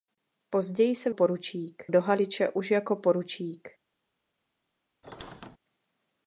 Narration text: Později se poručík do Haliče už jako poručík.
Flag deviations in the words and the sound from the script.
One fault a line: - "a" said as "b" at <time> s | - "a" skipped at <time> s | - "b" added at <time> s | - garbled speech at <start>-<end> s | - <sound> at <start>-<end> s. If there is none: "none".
- squeak at 5.0-5.6 s